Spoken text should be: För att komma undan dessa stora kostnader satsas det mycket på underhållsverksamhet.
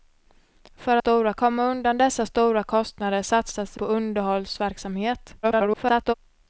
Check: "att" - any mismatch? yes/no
yes